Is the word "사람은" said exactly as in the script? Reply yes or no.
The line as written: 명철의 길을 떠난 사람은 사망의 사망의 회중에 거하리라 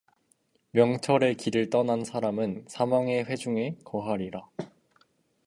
yes